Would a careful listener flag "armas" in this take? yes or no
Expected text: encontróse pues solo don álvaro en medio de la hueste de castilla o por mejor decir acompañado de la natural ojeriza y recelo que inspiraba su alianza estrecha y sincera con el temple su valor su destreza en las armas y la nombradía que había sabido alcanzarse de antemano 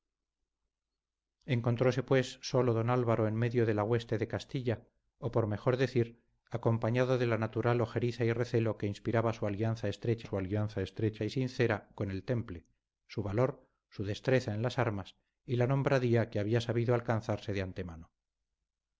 no